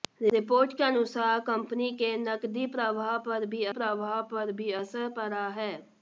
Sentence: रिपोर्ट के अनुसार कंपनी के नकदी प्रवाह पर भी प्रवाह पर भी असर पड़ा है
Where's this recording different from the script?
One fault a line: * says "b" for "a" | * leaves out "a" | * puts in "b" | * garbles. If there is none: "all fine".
all fine